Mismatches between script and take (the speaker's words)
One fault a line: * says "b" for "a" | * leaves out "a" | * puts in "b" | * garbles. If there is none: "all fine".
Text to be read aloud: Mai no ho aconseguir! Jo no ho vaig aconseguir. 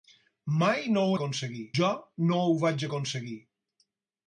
all fine